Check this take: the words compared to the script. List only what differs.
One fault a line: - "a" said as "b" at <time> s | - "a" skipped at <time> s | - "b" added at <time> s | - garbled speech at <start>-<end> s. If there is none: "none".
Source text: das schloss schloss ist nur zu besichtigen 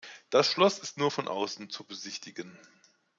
- "schloss" skipped at 0.8 s
- "von außen" added at 1.1 s